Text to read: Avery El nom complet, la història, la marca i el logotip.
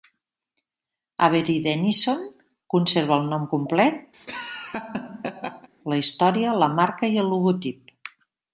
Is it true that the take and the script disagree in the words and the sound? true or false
true